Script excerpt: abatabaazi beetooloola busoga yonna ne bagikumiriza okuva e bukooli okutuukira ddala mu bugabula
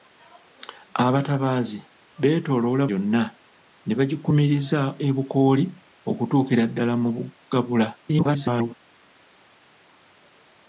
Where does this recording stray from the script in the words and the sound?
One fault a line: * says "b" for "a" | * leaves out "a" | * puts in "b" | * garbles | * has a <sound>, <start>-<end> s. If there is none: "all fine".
* leaves out "busoga"
* leaves out "okuva"
* garbles